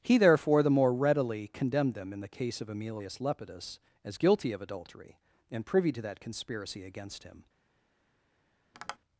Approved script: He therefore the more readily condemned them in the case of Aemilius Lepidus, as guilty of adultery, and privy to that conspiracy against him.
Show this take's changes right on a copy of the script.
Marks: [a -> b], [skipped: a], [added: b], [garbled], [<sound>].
He therefore the more readily condemned them in the case of Aemilius Lepidus, as guilty of adultery, and privy to that conspiracy against him. [tap]